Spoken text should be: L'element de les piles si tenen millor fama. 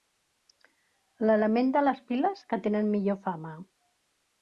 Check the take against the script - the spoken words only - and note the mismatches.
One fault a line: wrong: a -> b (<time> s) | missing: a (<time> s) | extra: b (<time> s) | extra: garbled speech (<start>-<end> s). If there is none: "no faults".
wrong: si -> que (2.5 s)